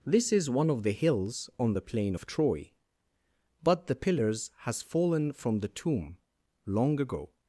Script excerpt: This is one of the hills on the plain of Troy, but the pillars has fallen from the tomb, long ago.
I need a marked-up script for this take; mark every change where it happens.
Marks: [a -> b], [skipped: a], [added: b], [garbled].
This is one of the hills on the plain of Troy, but the pillars has fallen from the tomb, long ago.